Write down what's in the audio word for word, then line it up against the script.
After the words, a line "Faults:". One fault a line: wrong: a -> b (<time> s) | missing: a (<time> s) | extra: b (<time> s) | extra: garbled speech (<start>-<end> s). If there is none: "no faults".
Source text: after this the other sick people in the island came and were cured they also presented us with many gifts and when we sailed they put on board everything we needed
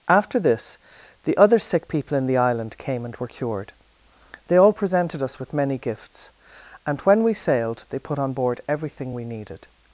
after this the other sick people in the island came and were cured they all presented us with many gifts and when we sailed they put on board everything we needed
Faults:
wrong: also -> all (4.6 s)